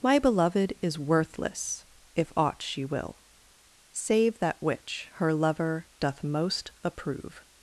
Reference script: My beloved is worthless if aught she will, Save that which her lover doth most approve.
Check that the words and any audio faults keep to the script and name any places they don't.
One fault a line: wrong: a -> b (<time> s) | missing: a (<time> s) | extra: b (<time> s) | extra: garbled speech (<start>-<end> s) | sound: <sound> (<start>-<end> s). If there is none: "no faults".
no faults